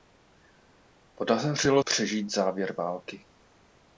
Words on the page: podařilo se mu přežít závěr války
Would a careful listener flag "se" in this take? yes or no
yes